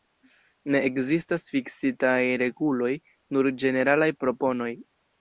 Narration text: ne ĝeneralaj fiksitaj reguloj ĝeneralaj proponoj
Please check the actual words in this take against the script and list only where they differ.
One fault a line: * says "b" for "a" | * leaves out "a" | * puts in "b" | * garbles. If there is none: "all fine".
* says "ekzistas" for "ĝeneralaj"
* puts in "nur"